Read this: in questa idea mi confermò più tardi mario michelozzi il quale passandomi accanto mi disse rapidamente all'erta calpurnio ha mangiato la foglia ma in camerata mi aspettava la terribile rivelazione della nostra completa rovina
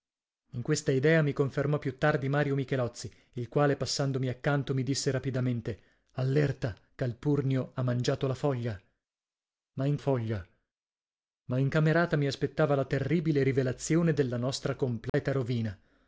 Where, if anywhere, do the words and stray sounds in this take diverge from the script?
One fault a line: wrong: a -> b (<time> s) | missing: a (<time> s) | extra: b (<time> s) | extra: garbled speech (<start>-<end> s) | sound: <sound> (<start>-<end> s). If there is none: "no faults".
extra: foglia ma in (10.0 s)
sound: dropout (15.1-15.1 s)